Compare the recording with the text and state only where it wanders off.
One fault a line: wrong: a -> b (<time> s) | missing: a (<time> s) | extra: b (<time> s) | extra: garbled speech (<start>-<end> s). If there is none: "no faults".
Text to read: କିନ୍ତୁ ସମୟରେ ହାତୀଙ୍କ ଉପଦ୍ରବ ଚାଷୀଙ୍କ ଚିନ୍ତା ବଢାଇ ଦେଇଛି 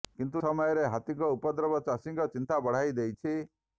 no faults